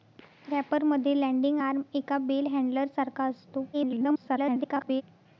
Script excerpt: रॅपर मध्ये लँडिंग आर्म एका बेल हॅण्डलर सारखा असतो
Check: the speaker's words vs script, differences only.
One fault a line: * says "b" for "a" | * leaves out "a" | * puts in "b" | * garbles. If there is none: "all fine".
* garbles